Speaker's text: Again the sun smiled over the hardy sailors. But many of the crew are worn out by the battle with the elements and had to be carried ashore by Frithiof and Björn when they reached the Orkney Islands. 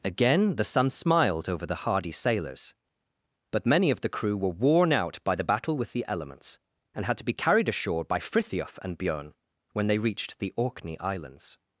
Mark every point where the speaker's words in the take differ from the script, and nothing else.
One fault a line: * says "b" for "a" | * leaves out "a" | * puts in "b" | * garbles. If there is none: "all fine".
* says "were" for "are"